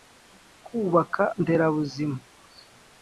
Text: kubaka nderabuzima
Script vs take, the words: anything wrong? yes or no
no